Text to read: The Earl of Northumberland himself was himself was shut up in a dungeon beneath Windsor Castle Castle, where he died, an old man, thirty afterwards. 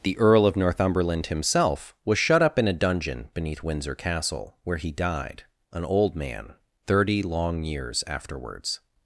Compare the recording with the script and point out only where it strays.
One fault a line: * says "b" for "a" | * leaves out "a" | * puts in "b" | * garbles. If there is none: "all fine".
* leaves out "himself was"
* leaves out "Castle"
* puts in "long years"